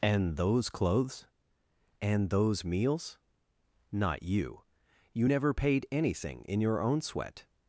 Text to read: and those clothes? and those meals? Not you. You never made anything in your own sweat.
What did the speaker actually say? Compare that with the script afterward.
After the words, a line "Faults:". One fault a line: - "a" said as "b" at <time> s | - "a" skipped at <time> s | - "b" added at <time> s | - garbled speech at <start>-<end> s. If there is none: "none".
and those clothes? and those meals? Not you. You never paid anything in your own sweat.
Faults:
- "made" said as "paid" at 5.5 s